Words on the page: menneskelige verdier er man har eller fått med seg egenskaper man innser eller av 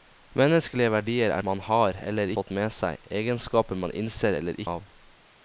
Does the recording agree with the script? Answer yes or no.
yes